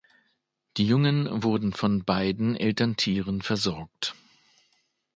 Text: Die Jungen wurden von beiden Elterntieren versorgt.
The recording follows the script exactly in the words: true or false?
true